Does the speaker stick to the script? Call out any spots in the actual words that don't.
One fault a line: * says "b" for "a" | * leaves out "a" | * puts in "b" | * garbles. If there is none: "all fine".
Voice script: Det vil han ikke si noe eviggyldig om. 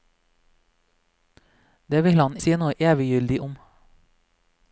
* leaves out "ikke"